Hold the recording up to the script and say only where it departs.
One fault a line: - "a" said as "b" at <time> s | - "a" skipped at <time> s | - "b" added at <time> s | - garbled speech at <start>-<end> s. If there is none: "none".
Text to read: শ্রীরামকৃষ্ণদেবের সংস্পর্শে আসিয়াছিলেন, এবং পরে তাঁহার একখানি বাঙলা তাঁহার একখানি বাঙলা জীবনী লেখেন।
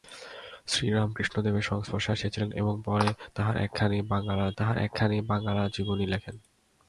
none